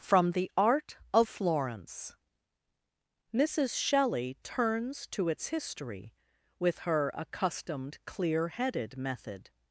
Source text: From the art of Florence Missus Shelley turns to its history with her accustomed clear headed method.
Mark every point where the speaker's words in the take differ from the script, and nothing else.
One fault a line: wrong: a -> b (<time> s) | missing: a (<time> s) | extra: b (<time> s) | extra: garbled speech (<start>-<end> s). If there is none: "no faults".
no faults